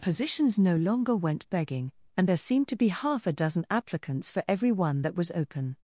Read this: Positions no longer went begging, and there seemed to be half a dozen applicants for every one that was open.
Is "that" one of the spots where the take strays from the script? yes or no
no